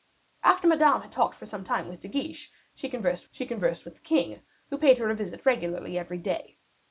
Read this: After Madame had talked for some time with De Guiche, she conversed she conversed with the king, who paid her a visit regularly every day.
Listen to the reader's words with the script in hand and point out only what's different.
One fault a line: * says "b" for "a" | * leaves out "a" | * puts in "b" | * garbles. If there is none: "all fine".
all fine